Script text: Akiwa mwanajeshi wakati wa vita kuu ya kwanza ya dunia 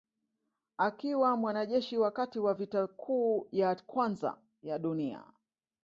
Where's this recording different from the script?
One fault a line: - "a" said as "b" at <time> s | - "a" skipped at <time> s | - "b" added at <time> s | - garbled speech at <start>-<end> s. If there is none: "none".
none